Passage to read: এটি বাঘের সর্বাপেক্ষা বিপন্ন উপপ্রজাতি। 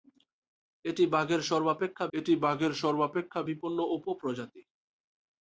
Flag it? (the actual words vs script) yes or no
yes